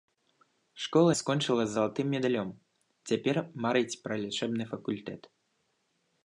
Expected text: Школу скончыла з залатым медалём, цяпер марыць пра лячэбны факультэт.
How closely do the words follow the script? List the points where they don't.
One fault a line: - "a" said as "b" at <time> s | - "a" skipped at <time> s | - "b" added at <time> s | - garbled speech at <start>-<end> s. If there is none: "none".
none